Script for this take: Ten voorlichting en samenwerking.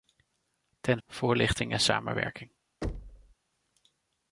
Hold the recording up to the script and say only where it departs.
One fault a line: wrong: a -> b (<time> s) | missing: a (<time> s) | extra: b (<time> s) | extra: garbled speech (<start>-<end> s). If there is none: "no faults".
no faults